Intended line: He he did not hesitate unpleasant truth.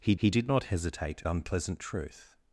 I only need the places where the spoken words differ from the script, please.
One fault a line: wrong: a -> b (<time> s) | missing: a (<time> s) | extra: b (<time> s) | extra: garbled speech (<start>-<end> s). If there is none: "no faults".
no faults